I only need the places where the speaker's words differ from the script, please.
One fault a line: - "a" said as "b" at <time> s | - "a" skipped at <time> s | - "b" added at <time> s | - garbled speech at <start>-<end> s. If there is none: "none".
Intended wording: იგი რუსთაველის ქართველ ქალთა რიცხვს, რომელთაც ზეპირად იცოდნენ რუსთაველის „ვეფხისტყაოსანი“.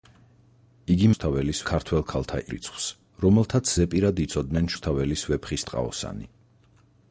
none